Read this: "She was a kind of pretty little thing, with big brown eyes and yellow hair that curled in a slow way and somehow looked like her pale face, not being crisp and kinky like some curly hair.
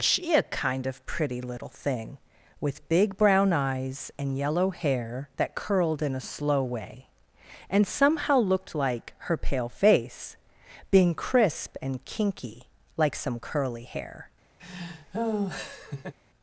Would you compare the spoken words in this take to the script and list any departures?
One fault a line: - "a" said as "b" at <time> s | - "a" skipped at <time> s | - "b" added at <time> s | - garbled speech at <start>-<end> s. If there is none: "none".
- "was" skipped at 0.3 s
- "not" skipped at 10.4 s